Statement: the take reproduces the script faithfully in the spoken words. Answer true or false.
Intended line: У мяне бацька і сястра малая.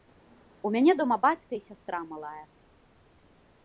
false